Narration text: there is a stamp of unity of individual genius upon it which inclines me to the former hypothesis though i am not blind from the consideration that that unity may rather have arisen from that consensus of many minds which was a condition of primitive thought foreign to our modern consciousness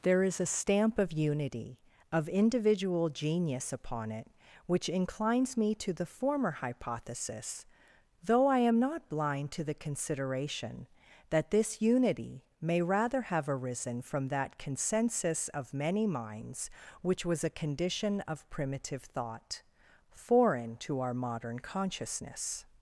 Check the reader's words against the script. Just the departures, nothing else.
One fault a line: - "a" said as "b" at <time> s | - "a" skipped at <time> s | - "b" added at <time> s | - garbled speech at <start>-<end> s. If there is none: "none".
- "from" said as "to" at 9.5 s
- "that" said as "this" at 11.5 s